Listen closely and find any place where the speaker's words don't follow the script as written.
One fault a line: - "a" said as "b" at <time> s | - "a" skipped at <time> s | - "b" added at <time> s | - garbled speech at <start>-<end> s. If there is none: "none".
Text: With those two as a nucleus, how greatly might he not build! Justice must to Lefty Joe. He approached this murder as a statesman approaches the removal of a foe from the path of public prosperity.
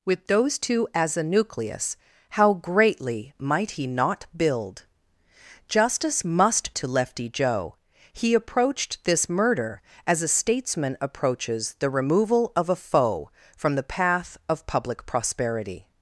none